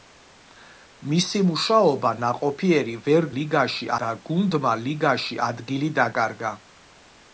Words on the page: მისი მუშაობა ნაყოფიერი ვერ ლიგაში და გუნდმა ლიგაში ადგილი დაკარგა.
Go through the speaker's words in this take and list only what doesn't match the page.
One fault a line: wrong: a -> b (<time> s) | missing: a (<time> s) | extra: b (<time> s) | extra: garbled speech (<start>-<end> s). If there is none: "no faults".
no faults